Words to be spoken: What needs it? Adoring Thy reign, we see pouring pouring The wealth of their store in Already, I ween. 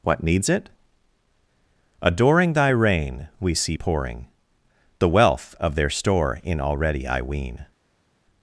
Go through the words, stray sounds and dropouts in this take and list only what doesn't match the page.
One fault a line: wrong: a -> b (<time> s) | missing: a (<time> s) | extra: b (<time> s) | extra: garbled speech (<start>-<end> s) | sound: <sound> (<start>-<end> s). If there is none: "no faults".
missing: pouring (4.3 s)